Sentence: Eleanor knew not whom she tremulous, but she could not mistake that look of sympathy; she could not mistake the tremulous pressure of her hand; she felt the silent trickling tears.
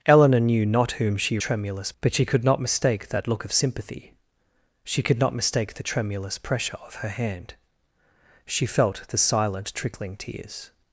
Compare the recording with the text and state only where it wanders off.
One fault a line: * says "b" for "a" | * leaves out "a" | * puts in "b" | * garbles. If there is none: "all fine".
all fine